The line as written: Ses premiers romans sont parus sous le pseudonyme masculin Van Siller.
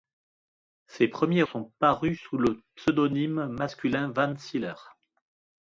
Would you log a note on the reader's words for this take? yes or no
yes